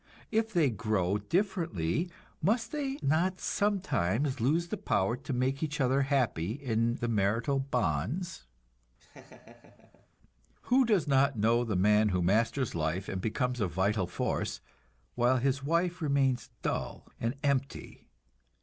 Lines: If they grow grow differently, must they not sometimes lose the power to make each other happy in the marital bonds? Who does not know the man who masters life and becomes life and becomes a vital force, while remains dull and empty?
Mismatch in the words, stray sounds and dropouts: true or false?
true